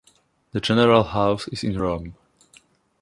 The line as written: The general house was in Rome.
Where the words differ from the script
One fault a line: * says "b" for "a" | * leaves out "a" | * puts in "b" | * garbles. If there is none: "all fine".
* says "is" for "was"